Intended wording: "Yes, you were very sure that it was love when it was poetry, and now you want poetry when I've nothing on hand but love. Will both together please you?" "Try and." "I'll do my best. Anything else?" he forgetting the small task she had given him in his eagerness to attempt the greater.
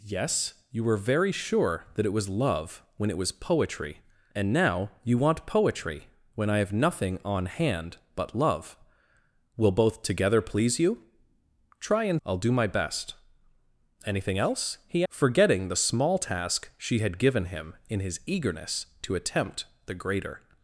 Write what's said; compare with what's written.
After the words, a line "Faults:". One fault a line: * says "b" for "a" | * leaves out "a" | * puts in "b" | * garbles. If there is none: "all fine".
"Yes, you were very sure that it was love when it was poetry, and now you want poetry when I've nothing on hand but love. Will both together please you?" "Try and." "I'll do my best. Anything else?" he forgetting the small task she had given him in his eagerness to attempt the greater.
Faults:
all fine